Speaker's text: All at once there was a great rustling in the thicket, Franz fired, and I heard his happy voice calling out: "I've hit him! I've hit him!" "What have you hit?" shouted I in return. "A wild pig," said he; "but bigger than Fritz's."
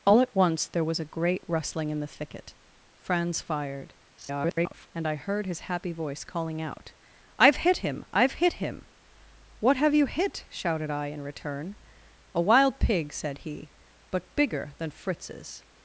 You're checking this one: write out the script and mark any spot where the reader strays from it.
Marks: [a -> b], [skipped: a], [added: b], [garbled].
All at once there was a great rustling in the thicket, Franz fired, [garbled] and I heard his happy voice calling out: "I've hit him! I've hit him!" "What have you hit?" shouted I in return. "A wild pig," said he; "but bigger than Fritz's."